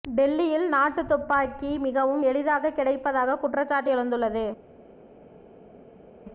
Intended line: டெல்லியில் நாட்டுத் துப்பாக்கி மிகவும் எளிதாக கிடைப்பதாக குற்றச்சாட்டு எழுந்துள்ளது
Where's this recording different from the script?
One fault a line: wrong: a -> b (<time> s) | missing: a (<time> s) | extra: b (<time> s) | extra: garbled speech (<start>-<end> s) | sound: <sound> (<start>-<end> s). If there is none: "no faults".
no faults